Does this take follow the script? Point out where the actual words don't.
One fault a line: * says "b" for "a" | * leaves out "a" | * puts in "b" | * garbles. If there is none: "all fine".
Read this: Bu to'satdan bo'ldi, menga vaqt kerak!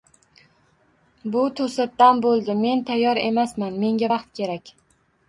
* puts in "men tayyor emasman"